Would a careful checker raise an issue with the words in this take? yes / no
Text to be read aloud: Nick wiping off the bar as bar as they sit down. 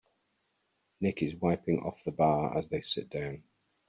yes